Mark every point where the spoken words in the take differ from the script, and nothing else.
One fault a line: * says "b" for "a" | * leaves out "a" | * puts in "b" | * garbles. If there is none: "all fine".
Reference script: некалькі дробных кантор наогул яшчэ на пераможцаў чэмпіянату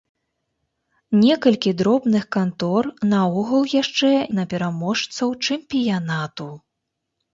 all fine